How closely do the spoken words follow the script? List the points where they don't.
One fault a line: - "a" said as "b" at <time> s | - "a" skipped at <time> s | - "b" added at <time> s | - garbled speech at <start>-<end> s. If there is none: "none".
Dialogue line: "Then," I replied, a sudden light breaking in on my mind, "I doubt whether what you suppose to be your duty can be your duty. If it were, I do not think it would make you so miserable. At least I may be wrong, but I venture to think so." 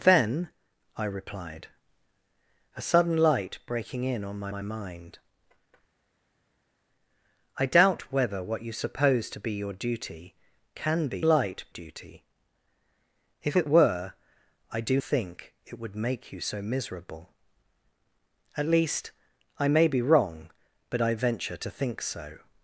- "my" added at 4.5 s
- "your" said as "light" at 11.2 s
- "not" skipped at 15.0 s